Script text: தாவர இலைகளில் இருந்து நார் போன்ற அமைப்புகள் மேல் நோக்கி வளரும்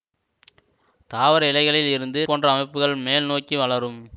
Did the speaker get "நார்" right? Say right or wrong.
wrong